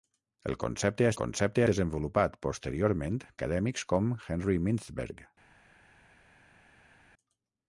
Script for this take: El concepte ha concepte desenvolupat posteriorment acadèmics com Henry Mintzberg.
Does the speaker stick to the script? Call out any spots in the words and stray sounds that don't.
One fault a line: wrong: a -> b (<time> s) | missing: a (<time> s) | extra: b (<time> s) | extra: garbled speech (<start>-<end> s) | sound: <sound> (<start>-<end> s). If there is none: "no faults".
no faults